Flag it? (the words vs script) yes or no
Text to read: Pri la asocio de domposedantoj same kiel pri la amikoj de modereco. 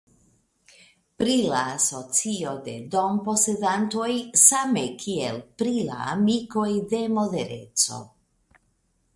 no